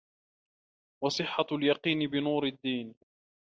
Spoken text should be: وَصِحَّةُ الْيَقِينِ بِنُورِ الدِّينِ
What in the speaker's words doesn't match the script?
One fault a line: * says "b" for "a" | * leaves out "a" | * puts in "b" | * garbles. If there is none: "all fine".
all fine